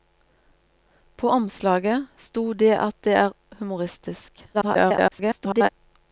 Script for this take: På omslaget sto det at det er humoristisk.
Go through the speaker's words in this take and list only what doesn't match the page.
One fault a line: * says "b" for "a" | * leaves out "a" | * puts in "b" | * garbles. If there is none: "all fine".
* garbles